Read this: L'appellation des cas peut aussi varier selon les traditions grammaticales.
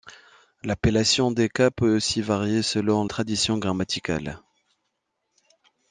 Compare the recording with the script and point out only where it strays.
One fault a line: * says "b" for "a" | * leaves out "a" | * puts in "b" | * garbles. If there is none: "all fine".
* leaves out "les"